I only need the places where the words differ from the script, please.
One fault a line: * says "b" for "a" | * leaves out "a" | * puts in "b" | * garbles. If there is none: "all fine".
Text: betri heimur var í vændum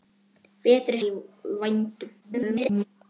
* leaves out "heimur var"
* garbles